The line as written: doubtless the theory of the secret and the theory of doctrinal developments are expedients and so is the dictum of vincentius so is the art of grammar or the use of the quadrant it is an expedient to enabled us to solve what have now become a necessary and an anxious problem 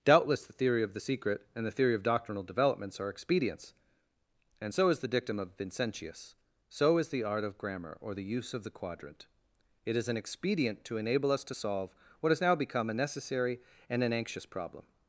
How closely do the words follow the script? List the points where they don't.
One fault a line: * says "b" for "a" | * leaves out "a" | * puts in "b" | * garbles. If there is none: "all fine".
* says "enable" for "enabled"
* says "has" for "have"